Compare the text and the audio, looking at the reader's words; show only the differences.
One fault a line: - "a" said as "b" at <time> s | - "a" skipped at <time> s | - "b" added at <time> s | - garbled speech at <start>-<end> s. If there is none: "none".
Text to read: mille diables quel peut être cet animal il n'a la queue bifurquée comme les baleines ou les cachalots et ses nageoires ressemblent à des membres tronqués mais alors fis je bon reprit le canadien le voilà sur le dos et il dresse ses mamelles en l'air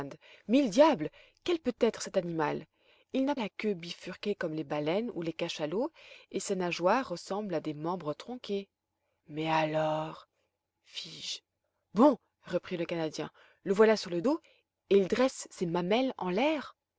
none